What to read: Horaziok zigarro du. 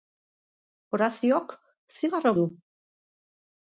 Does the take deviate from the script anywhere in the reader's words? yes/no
no